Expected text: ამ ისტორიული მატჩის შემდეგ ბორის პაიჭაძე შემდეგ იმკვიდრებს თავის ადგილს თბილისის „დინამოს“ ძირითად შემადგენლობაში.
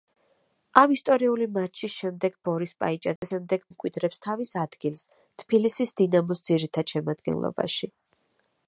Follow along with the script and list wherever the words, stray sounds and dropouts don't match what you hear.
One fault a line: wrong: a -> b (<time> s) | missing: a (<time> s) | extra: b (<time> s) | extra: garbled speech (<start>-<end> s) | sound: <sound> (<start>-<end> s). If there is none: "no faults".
sound: dropout (3.2-3.2 s)